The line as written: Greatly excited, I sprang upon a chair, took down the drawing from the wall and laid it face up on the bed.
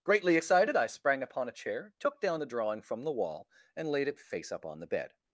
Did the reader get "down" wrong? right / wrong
right